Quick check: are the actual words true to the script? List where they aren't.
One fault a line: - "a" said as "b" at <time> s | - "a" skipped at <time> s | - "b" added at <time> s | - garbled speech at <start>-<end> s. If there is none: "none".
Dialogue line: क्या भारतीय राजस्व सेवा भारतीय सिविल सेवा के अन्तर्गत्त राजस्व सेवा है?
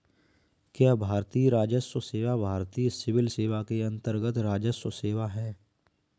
none